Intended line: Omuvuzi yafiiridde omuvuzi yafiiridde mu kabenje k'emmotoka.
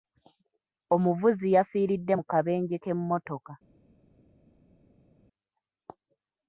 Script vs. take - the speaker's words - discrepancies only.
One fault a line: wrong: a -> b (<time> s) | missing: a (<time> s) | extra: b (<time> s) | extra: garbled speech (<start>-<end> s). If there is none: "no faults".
missing: omuvuzi yafiiridde (2.1 s)